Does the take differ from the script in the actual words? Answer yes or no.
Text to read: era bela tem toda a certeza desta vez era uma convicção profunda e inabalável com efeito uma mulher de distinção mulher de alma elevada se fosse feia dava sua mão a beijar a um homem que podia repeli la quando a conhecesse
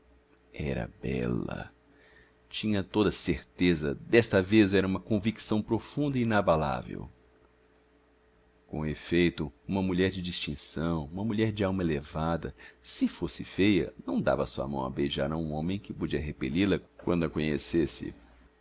yes